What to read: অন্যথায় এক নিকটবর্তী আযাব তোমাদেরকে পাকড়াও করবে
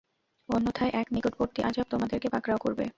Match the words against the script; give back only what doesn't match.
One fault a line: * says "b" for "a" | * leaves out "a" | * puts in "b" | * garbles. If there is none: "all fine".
all fine